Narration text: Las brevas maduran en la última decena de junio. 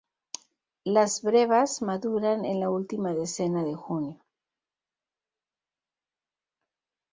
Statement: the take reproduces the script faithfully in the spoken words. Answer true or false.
true